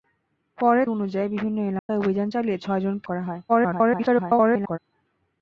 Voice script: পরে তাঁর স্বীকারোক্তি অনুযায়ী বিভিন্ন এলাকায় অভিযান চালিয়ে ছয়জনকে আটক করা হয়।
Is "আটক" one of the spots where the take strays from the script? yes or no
yes